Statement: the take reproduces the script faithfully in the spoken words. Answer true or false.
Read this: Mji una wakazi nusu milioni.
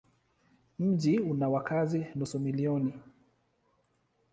true